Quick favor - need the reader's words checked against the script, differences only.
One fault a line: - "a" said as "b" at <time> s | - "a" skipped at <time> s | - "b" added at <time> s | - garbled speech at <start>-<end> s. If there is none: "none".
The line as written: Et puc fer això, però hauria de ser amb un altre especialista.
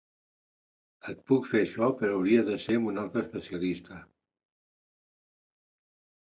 none